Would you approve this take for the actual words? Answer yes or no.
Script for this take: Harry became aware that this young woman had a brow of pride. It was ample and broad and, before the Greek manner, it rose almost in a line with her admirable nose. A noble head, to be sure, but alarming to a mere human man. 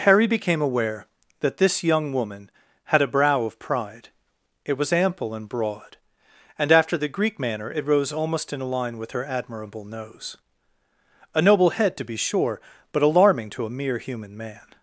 no